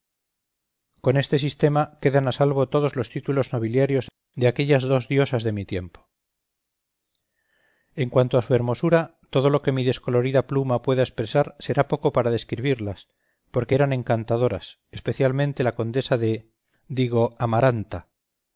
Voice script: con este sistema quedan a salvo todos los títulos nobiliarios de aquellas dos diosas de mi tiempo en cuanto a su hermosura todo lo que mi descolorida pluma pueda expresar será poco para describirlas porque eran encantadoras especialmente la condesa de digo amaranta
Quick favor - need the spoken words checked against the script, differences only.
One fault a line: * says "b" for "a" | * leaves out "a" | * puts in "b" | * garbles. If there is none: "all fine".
all fine